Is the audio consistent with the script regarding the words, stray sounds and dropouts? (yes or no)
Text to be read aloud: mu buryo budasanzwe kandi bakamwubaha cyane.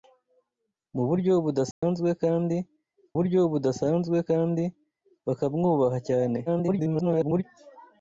no